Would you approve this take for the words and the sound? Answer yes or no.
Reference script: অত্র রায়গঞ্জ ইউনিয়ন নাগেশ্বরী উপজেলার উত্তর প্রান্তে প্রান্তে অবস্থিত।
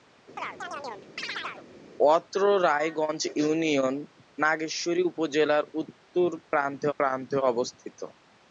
no